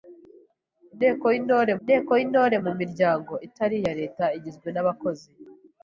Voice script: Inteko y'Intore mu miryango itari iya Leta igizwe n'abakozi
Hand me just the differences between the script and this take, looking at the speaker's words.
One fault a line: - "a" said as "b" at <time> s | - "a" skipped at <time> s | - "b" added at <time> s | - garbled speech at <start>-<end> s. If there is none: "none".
- "inteko y'Intore" added at 1.8 s